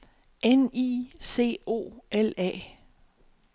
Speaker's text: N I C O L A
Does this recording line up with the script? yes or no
yes